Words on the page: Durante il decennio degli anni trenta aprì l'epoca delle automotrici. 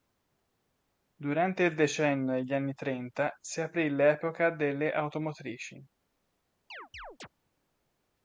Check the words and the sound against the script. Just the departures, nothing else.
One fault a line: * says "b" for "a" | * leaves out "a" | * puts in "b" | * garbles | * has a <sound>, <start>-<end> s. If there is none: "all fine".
* puts in "si"
* has a chirp, 6.7-7.3 s